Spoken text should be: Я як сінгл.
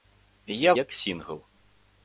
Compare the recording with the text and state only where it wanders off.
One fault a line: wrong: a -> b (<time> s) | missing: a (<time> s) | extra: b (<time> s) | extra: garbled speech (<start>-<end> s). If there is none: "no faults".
no faults